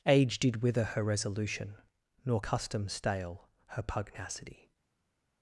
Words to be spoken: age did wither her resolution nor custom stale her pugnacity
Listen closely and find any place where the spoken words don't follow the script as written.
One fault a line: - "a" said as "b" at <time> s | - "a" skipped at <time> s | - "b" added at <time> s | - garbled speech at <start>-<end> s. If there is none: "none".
none